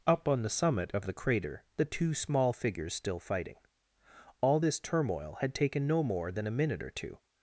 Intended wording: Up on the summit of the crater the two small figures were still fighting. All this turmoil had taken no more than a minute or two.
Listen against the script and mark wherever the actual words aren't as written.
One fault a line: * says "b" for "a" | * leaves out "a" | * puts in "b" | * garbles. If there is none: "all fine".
* leaves out "were"